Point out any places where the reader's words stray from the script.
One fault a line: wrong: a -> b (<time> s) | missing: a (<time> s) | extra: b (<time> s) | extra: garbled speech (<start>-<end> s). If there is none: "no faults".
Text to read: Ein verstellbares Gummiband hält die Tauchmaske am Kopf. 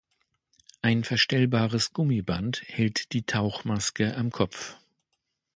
no faults